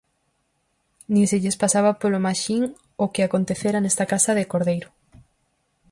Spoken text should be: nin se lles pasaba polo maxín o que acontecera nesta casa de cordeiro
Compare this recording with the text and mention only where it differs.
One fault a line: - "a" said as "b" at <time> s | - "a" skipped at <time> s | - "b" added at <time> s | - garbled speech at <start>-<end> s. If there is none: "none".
none